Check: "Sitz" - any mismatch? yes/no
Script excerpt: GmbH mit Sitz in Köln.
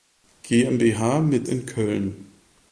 yes